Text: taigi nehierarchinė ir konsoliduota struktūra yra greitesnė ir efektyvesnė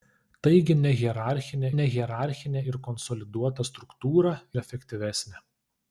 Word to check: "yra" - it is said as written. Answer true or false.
false